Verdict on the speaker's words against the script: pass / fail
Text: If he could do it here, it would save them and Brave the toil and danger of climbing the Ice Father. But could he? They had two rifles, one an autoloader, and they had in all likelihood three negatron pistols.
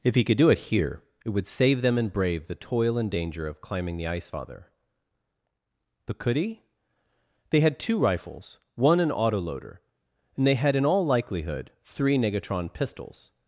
pass